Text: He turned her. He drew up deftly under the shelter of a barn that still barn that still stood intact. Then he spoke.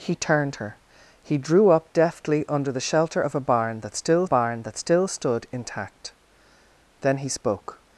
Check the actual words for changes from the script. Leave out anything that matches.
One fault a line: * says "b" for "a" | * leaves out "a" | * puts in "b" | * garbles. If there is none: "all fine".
all fine